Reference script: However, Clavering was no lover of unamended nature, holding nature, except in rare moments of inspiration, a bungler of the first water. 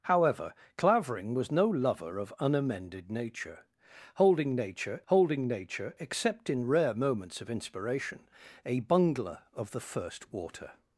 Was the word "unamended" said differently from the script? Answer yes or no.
no